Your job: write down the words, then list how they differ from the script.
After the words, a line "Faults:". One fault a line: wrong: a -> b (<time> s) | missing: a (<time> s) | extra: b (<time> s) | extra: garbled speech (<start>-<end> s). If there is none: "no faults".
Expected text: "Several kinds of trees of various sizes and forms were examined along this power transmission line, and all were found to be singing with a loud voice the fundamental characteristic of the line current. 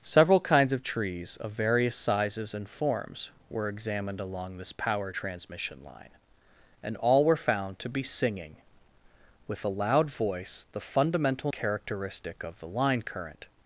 "Several kinds of trees of various sizes and forms were examined along this power transmission line, and all were found to be singing with a loud voice the fundamental characteristic of the line current.
Faults:
no faults